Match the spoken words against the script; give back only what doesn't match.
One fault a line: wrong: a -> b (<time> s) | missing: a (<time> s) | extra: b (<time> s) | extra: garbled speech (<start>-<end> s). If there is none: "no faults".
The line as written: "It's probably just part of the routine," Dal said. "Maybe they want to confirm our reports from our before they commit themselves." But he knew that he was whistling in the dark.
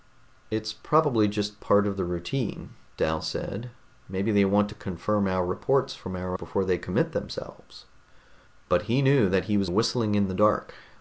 no faults